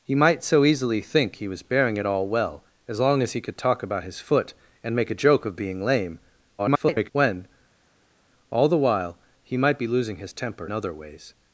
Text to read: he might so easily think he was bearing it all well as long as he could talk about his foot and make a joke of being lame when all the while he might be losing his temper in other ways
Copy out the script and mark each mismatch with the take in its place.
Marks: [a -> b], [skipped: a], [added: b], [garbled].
he might so easily think he was bearing it all well as long as he could talk about his foot and make a joke of being lame [garbled] when all the while he might be losing his temper [skipped: in] other ways